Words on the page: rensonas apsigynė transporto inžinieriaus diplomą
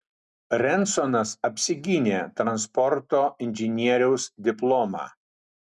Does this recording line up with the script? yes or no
yes